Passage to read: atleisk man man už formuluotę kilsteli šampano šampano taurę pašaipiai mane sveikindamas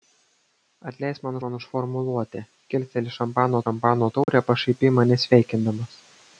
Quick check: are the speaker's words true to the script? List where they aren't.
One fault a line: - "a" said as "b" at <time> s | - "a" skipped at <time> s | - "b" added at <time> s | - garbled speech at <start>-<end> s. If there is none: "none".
none